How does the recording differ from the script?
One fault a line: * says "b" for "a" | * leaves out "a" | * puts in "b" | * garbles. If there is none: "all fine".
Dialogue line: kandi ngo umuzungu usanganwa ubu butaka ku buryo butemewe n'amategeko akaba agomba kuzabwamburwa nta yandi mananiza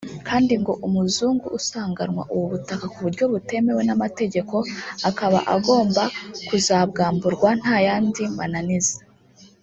all fine